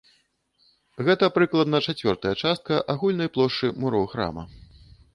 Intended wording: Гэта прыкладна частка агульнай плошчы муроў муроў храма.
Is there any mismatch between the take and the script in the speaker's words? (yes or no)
yes